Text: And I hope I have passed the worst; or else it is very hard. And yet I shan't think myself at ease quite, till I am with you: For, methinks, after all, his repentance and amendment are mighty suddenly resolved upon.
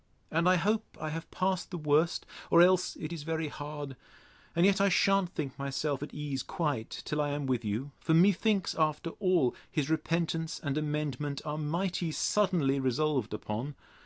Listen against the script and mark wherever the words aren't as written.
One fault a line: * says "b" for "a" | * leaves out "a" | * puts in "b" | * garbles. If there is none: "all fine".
all fine